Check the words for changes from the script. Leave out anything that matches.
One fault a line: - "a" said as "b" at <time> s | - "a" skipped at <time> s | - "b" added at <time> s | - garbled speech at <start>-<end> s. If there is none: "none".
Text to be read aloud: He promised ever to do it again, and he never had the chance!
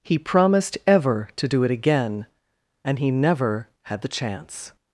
none